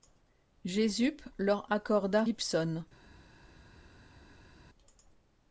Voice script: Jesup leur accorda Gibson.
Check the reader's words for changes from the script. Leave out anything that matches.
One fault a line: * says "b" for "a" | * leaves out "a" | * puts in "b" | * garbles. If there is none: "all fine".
all fine